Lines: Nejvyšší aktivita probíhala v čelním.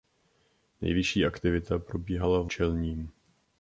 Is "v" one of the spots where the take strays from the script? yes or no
no